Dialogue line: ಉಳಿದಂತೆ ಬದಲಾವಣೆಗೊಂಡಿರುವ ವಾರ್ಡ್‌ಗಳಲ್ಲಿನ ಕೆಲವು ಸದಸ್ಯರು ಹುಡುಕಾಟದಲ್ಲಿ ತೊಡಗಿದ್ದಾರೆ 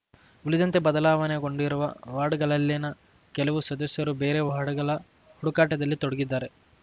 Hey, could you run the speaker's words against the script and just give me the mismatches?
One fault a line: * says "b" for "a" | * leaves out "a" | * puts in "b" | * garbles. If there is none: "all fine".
* puts in "ಬೇರೆ ವಾರ್ಡ್‌ಗಳ"